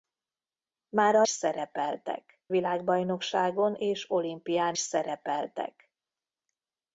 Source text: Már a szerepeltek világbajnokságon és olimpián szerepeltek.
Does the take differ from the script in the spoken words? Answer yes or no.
no